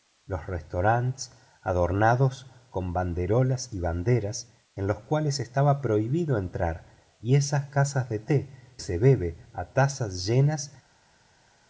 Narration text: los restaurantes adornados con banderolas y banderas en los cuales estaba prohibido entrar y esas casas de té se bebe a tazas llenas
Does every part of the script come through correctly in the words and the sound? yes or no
yes